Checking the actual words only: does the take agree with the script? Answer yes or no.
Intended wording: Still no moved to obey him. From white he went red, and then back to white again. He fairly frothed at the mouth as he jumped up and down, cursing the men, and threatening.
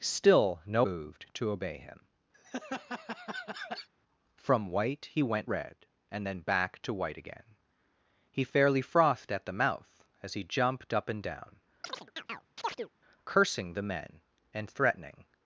yes